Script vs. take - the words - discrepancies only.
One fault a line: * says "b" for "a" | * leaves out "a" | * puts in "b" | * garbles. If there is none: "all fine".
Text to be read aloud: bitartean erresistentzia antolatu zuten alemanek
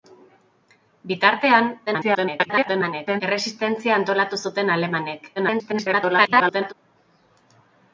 * garbles
* garbles